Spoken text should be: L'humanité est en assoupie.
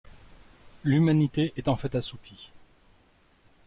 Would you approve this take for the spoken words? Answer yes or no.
no